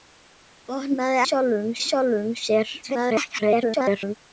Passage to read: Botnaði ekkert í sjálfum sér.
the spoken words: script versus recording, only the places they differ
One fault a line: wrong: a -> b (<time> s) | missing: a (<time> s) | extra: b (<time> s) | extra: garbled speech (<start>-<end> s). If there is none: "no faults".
wrong: ekkert -> sjálfum (1.3 s)
extra: garbled speech (2.8-4.1 s)